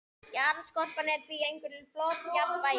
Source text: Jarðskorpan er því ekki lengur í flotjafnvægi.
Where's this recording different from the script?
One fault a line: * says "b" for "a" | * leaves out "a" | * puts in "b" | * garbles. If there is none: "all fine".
* leaves out "ekki"